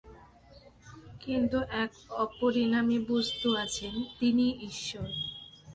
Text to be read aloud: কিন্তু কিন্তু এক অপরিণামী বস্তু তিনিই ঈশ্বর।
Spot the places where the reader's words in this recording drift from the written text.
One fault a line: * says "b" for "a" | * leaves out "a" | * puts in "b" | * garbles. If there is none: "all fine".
* leaves out "কিন্তু"
* puts in "আছেন"